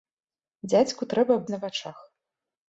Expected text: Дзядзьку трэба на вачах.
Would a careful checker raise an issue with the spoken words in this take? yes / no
no